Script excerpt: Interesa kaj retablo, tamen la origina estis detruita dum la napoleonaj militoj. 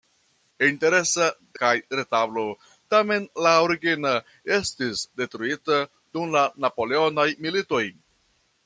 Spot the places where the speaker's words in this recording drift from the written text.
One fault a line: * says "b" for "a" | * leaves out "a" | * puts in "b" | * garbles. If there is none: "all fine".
all fine